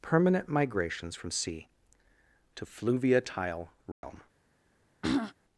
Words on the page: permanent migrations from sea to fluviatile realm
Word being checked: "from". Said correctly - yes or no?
yes